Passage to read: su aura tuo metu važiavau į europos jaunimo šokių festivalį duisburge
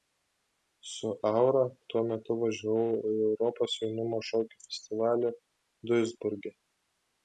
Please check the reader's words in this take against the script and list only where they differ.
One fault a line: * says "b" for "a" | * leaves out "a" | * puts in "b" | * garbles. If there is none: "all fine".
all fine